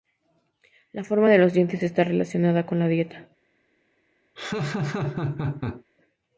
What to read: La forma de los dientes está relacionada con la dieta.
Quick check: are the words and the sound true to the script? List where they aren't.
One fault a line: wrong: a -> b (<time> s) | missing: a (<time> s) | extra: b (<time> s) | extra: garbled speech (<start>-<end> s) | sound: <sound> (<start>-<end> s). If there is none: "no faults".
sound: laugh (4.4-5.8 s)